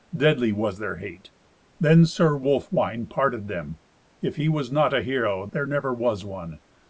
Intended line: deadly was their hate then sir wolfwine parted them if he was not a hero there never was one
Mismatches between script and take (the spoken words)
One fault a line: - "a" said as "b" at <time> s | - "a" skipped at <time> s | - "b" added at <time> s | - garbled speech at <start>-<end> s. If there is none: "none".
none